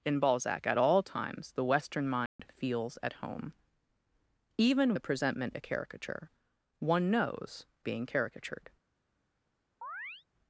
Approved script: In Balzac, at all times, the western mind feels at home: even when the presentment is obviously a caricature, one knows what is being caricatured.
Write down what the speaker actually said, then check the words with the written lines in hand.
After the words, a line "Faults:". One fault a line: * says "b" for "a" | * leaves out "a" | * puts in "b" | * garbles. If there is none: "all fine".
In Balzac, at all times, the western mind feels at home: even the presentment a caricature, one knows being caricatured.
Faults:
* leaves out "when"
* leaves out "is obviously"
* leaves out "what is"